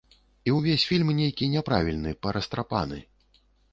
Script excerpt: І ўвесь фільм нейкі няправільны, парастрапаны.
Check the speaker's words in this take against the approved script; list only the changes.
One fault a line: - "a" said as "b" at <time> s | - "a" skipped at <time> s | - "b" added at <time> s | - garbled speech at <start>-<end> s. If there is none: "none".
none